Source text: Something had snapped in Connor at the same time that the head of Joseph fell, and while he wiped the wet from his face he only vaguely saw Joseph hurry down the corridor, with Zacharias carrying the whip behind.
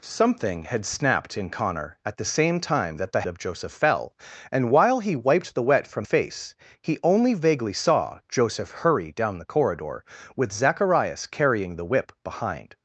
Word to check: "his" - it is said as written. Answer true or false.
false